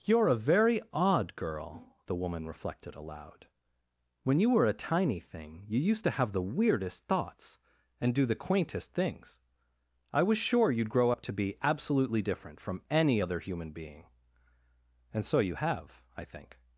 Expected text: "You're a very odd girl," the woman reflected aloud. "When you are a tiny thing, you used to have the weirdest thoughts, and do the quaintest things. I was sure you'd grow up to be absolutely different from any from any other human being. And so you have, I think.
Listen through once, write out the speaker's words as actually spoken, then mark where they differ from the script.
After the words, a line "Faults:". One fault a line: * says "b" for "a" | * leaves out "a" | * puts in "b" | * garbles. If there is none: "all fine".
"You're a very odd girl," the woman reflected aloud. "When you were a tiny thing, you used to have the weirdest thoughts, and do the quaintest things. I was sure you'd grow up to be absolutely different from any other human being. And so you have, I think.
Faults:
* says "were" for "are"
* leaves out "from any"